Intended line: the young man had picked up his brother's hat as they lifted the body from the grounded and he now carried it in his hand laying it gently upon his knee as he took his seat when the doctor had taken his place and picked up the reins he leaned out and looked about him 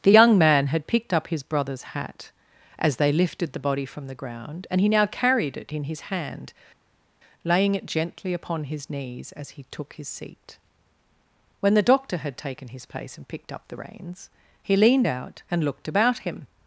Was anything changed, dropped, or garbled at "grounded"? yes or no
yes